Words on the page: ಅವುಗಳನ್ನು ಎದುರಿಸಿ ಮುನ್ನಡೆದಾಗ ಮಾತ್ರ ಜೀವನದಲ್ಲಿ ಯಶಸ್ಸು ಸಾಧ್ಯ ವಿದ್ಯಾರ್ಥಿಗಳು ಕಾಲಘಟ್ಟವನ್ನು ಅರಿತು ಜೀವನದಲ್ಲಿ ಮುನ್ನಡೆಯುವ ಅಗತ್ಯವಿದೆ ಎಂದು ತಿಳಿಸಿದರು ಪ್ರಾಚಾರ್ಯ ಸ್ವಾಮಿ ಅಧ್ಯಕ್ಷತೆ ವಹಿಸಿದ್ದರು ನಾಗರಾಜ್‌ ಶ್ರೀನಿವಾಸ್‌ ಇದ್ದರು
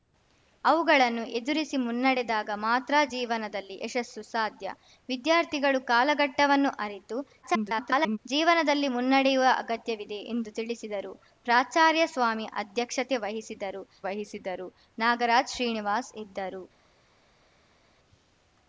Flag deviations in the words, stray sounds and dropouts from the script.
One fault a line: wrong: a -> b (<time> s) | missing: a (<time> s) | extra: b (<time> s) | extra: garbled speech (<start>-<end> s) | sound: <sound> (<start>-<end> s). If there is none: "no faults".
extra: garbled speech (7.4-8.2 s)
extra: ವಹಿಸಿದ್ದರು (14.1 s)